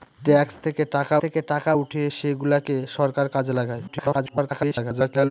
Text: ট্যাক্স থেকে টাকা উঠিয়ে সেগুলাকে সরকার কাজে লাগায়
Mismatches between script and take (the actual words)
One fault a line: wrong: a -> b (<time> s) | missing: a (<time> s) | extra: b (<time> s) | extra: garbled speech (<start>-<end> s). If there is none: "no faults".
extra: থেকে টাকা (1.2 s)
extra: garbled speech (3.9-5.3 s)